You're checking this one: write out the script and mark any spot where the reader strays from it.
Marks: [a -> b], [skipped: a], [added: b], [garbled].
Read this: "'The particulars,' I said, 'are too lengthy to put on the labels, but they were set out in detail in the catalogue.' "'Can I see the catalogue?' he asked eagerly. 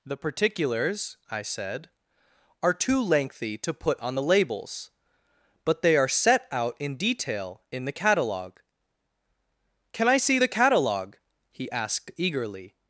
"'The particulars,' I said, 'are too lengthy to put on the labels, but they [were -> are] set out in detail in the catalogue.' "'Can I see the catalogue?' he asked eagerly.